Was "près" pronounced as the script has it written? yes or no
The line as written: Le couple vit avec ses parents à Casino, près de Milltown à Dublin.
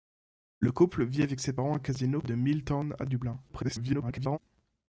no